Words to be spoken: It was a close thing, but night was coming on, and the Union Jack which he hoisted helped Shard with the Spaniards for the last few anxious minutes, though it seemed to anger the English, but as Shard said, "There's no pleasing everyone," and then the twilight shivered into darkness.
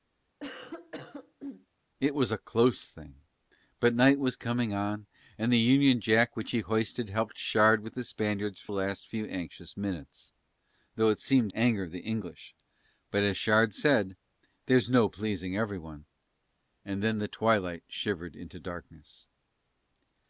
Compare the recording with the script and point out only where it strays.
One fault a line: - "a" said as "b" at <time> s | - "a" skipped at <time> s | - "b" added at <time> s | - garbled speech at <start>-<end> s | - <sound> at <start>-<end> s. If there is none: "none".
- cough at 0.4-1.7 s
- "the" skipped at 8.7 s
- "to" skipped at 11.5 s